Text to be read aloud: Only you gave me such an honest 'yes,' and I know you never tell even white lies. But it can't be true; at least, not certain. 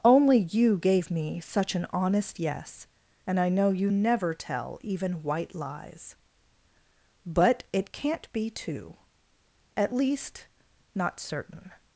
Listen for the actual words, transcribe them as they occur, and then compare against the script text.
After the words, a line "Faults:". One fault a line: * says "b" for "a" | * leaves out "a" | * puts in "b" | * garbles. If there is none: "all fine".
Only you gave me such an honest 'yes,' and I know you never tell even white lies. But it can't be two; at least, not certain.
Faults:
* says "two" for "true"